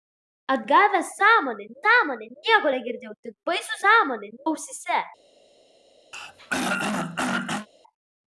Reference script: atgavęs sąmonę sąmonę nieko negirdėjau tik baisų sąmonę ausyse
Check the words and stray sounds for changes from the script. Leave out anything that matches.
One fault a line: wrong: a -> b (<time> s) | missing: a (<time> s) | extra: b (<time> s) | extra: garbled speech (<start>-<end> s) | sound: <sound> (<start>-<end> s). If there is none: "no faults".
sound: throat clearing (6.1-7.7 s)